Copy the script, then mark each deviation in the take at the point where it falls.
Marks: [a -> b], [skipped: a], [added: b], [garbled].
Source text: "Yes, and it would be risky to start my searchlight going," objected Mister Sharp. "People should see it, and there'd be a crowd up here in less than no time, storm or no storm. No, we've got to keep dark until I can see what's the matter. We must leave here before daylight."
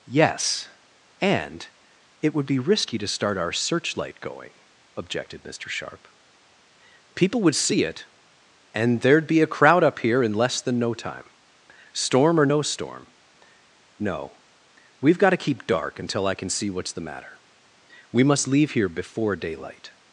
"Yes, and it would be risky to start [my -> our] searchlight going," objected Mister Sharp. "People [should -> would] see it, and there'd be a crowd up here in less than no time, storm or no storm. No, we've got to keep dark until I can see what's the matter. We must leave here before daylight."